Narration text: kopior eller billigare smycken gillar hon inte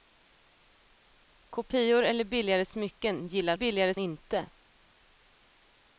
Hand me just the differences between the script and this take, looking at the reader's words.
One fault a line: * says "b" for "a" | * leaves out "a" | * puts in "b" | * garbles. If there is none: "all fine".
* says "billigare" for "hon"